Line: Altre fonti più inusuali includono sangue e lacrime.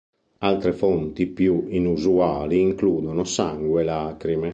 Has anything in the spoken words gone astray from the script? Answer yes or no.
no